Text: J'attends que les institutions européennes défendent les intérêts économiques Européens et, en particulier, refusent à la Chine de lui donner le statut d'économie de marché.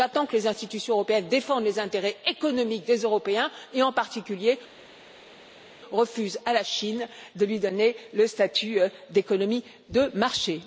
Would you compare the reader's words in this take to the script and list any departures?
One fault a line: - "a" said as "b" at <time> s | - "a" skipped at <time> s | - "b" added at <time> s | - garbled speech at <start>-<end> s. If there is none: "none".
- "des" added at 2.9 s